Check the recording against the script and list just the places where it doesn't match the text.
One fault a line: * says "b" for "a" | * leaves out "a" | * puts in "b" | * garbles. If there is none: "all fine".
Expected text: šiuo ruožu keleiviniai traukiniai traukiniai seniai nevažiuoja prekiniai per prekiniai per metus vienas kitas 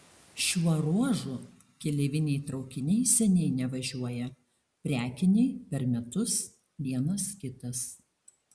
* leaves out "traukiniai"
* leaves out "prekiniai per"